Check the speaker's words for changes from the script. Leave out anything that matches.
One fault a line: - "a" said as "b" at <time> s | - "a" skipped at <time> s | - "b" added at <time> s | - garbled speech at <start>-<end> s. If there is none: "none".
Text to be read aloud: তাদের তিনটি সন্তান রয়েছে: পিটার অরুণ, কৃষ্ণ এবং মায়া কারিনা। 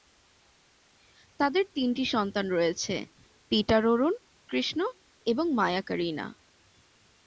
none